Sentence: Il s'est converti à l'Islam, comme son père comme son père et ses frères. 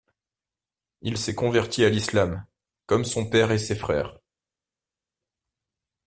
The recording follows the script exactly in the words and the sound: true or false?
false